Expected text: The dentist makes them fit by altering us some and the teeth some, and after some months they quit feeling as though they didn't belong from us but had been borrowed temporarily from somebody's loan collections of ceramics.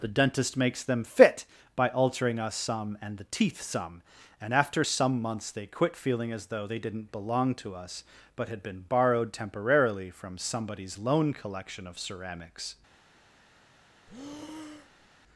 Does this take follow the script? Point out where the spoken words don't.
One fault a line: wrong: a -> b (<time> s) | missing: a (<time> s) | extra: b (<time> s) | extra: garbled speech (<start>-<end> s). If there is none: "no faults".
wrong: from -> to (7.5 s)
wrong: collections -> collection (11.3 s)